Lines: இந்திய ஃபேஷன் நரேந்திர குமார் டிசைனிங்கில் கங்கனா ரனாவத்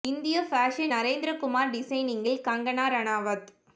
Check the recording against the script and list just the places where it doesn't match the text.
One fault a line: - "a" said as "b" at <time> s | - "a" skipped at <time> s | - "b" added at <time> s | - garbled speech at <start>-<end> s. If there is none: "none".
none